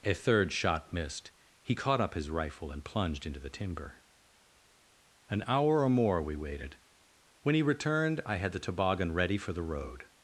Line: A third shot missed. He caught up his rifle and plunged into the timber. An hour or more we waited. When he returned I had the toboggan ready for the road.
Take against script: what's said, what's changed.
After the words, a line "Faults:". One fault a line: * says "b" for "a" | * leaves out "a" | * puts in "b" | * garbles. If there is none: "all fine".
A third shot missed. He caught up his rifle and plunged into the timber. An hour or more we waited. When he returned I had the toboggan ready for the road.
Faults:
all fine